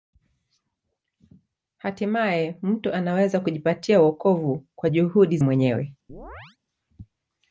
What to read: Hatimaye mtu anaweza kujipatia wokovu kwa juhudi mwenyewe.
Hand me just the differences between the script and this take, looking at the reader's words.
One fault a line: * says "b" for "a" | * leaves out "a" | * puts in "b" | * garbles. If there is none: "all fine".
all fine